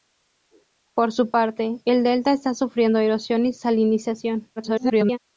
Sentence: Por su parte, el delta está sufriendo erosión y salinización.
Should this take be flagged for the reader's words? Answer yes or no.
yes